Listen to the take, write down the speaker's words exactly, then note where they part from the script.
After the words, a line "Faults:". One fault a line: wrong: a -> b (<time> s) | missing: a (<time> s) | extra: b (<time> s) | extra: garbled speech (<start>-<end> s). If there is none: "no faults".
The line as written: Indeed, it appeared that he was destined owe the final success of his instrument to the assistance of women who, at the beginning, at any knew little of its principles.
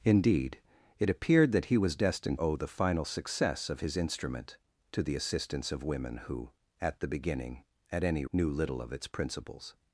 Indeed, it appeared that he was destined owe the final success of his instrument to the assistance of women who, at the beginning, at any knew little of its principles.
Faults:
no faults